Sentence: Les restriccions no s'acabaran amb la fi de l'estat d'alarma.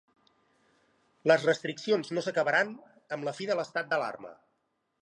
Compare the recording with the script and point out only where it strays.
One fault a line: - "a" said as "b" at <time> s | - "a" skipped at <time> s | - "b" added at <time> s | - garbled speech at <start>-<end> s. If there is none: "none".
none